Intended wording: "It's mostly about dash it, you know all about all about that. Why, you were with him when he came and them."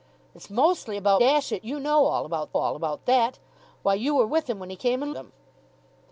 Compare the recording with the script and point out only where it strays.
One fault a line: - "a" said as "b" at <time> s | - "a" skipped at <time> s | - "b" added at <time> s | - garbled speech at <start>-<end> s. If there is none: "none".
none